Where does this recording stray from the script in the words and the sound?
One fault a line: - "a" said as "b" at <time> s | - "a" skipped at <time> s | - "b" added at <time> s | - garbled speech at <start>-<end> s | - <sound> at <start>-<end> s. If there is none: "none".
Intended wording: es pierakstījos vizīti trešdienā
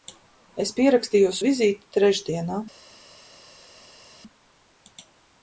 none